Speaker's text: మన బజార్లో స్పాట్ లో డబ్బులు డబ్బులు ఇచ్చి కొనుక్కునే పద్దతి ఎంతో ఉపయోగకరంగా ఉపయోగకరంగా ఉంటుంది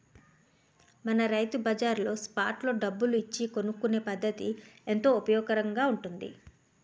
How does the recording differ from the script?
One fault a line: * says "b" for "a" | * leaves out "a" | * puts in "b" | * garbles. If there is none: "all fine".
* puts in "రైతు"
* leaves out "డబ్బులు"
* leaves out "ఉపయోగకరంగా"